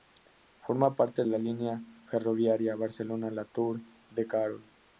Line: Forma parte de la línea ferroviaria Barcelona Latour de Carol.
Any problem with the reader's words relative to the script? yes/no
yes